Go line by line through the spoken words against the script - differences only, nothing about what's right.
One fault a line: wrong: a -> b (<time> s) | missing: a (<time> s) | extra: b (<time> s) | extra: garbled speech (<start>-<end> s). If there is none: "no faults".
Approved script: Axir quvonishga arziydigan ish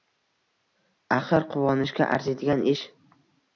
no faults